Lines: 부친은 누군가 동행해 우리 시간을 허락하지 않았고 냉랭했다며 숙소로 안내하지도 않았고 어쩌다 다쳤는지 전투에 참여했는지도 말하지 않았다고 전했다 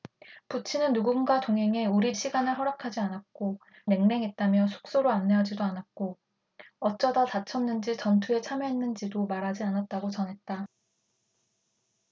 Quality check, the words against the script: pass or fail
pass